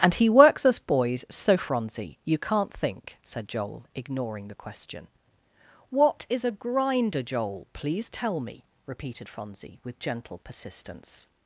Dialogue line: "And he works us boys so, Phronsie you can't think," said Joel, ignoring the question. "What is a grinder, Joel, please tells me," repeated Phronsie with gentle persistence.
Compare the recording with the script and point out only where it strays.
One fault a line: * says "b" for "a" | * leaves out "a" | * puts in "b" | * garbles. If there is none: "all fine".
* says "tell" for "tells"